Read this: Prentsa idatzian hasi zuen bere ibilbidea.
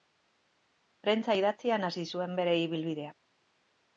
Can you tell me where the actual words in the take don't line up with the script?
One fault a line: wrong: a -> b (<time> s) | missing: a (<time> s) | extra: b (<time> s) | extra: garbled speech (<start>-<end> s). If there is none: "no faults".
no faults